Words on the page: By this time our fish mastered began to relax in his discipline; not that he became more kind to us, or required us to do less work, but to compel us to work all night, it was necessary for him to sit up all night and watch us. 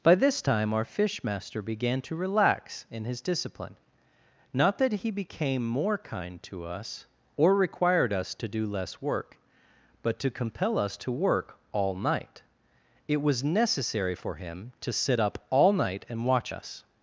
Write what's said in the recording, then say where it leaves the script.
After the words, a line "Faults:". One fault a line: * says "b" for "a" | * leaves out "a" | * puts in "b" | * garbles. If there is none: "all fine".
By this time our fish master began to relax in his discipline; not that he became more kind to us, or required us to do less work, but to compel us to work all night, it was necessary for him to sit up all night and watch us.
Faults:
* says "master" for "mastered"